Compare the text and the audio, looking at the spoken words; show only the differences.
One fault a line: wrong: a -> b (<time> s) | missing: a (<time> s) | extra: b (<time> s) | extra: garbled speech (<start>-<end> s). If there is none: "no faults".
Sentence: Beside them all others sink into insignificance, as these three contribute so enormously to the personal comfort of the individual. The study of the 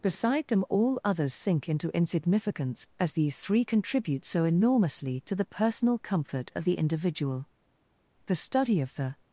no faults